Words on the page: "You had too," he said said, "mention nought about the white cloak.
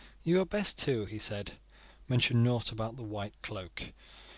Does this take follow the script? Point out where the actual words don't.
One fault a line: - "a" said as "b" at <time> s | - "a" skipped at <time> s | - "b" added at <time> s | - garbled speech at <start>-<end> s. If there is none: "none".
- "best" added at 0.5 s
- "said" skipped at 1.6 s